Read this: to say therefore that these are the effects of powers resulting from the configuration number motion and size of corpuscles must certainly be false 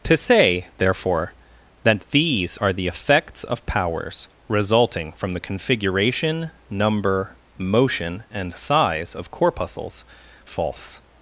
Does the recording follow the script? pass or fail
fail